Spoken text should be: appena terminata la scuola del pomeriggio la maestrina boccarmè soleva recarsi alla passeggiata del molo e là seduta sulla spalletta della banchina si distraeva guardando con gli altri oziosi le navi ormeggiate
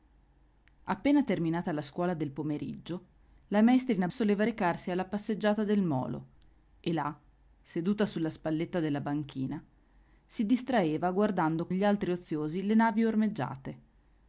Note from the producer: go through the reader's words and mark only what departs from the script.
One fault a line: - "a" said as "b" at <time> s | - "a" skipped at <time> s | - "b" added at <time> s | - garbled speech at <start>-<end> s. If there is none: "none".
- "boccarmè" skipped at 4.1 s
- "con" skipped at 11.7 s